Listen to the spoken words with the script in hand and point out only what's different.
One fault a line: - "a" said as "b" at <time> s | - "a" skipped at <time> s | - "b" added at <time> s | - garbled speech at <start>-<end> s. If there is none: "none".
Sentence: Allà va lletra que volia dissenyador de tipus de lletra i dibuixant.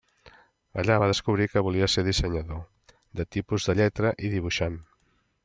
- "lletra" said as "descobrir" at 1.1 s
- "ser" added at 1.9 s